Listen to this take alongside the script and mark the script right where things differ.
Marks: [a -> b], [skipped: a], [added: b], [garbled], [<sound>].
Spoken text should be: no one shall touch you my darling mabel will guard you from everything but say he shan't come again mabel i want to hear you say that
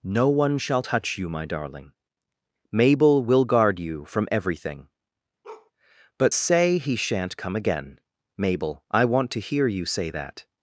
no one shall touch you my darling mabel will guard you from everything [bark] but say he shan't come again mabel i want to hear you say that